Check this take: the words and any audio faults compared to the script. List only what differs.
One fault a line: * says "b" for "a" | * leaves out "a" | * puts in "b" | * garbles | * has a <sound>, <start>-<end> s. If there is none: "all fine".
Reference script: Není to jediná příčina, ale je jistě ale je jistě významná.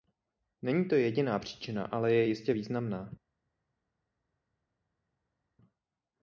* leaves out "ale je jistě"